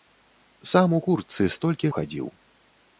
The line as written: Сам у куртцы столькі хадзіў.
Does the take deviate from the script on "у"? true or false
false